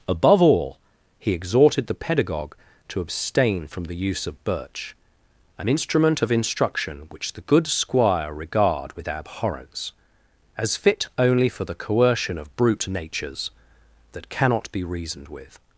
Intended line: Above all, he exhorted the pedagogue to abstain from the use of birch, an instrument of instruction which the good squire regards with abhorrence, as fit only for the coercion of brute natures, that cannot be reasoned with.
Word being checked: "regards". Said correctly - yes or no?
no